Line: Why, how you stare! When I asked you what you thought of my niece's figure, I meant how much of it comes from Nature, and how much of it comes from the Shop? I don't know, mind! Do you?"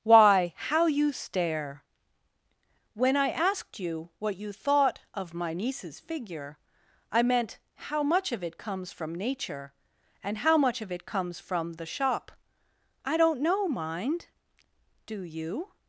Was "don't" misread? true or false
false